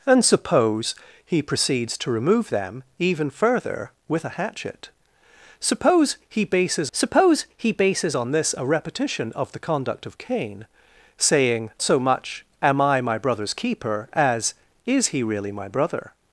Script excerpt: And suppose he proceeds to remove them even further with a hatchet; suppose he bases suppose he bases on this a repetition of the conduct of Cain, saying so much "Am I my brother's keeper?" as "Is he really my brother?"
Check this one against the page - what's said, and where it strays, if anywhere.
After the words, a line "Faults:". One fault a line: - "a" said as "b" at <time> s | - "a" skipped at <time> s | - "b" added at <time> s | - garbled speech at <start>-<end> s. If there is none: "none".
And suppose he proceeds to remove them even further with a hatchet; suppose he bases suppose he bases on this a repetition of the conduct of Cain, saying so much "Am I my brother's keeper?" as "Is he really my brother?"
Faults:
none